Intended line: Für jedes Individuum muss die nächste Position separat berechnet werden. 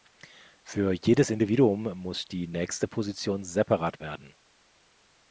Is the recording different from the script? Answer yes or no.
yes